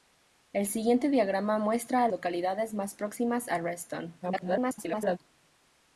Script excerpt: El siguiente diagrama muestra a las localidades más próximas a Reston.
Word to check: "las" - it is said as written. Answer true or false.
false